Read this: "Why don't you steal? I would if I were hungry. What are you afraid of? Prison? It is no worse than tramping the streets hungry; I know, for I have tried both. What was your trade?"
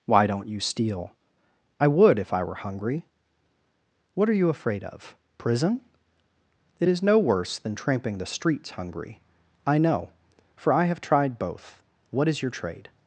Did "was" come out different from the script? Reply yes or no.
yes